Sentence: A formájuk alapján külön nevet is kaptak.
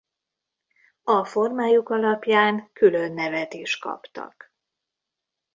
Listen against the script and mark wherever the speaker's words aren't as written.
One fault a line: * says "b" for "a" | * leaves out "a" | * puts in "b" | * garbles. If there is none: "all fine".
all fine